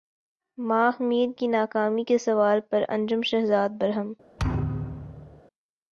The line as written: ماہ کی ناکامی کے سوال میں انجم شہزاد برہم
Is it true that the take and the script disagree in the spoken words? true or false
true